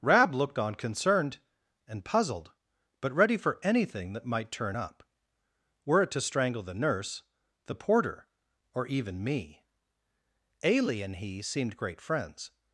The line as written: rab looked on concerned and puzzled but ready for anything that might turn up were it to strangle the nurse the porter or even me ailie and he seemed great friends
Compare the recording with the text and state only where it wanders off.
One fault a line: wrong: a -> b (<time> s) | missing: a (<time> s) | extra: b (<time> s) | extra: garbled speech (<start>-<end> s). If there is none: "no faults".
no faults